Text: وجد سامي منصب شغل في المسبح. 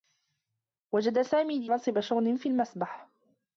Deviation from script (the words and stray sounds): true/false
false